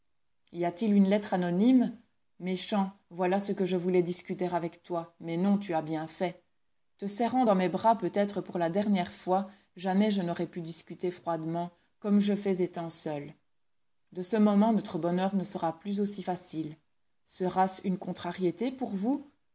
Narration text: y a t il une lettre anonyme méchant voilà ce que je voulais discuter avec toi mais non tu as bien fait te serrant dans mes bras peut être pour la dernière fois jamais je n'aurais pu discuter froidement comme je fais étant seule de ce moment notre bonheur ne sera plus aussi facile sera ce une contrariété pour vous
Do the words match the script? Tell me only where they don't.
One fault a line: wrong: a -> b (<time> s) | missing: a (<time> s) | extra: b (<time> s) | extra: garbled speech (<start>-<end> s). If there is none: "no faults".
no faults